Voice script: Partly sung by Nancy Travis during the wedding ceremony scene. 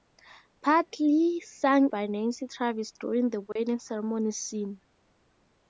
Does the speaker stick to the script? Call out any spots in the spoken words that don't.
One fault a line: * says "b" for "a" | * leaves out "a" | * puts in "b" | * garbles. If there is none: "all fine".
all fine